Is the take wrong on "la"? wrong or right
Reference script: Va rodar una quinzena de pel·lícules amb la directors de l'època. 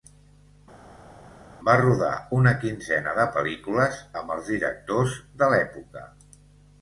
wrong